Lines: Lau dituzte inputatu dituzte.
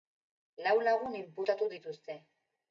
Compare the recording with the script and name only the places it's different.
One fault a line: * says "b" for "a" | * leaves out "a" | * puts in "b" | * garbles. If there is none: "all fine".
* says "lagun" for "dituzte"